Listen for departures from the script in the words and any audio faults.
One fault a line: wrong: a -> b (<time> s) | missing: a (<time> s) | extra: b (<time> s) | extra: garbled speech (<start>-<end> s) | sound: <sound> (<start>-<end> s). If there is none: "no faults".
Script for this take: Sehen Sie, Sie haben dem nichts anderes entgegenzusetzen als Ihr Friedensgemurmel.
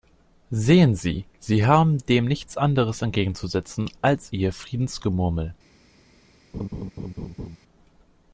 sound: laugh (6.5-7.6 s)